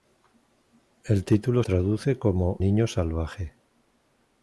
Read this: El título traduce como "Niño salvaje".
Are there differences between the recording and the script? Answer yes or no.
no